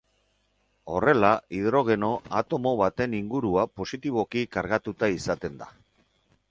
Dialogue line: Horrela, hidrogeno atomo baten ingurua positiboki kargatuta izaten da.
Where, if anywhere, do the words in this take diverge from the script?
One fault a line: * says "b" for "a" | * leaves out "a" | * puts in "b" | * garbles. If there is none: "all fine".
all fine